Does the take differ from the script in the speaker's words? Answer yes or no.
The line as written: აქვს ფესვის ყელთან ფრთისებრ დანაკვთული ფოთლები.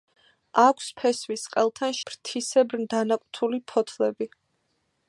no